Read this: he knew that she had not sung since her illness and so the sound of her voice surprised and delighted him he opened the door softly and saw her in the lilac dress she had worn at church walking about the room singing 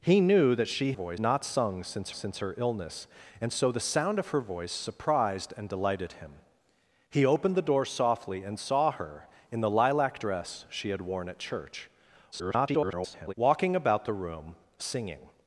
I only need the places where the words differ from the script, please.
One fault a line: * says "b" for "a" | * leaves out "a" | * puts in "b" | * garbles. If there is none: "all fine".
* says "voice" for "had"
* puts in "since"
* garbles